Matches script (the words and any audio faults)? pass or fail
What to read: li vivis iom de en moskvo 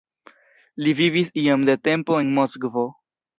fail